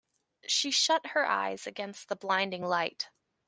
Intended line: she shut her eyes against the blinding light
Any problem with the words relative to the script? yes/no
no